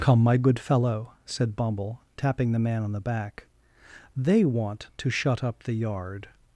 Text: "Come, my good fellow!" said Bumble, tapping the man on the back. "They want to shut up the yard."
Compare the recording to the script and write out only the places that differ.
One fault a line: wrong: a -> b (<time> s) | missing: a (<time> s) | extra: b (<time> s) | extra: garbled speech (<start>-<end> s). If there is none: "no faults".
no faults